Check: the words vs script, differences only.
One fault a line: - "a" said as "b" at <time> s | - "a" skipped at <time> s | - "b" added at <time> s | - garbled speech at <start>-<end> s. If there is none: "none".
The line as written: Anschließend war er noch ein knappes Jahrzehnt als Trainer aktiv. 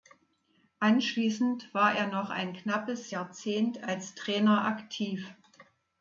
none